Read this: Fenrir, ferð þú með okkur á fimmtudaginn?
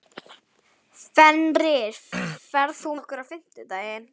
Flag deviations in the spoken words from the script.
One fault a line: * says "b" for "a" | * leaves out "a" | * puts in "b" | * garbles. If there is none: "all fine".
* leaves out "með"